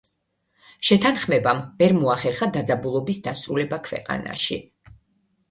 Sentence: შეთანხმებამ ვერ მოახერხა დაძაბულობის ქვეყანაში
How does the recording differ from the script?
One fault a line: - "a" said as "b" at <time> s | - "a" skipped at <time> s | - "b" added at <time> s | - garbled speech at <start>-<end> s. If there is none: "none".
- "დასრულება" added at 3.3 s